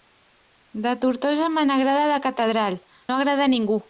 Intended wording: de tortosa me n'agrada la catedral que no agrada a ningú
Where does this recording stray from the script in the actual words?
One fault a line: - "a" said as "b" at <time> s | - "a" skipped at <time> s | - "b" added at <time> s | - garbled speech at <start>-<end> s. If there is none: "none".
- "que" skipped at 2.8 s